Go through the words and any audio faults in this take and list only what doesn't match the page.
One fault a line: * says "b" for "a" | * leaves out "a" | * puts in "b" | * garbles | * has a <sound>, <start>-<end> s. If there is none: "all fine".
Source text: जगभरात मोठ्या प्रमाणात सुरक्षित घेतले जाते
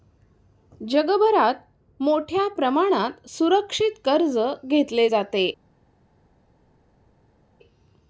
* puts in "कर्ज"